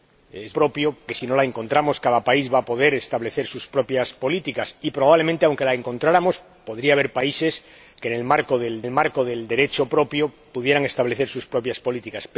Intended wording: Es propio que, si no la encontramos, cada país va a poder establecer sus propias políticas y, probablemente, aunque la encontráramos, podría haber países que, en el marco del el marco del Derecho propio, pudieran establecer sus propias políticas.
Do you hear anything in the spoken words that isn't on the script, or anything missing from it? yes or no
no